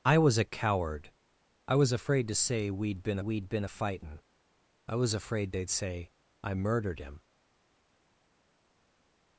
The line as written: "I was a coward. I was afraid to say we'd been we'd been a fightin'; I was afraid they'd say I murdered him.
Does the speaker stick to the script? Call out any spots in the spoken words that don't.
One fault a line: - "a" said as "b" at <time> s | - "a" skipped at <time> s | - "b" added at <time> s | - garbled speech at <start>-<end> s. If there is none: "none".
none